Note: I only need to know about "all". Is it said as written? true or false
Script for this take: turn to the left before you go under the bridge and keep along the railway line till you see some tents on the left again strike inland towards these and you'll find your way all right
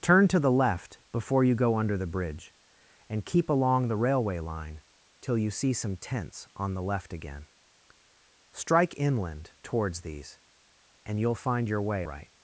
false